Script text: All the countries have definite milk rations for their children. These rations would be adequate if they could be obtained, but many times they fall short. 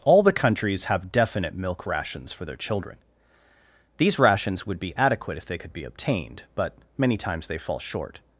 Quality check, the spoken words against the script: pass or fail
pass